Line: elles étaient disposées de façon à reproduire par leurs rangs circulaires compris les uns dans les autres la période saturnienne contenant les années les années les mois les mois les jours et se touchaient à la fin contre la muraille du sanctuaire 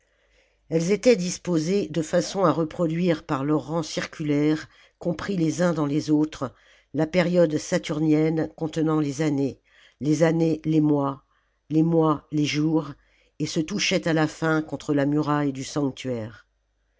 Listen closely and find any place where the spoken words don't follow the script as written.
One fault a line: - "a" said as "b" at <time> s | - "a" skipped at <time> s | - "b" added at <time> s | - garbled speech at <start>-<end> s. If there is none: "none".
none